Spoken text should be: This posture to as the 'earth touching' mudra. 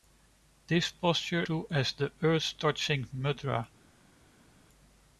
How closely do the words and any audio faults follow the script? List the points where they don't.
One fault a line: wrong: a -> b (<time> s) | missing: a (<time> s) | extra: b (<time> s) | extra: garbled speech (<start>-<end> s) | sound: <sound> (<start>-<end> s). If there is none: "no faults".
no faults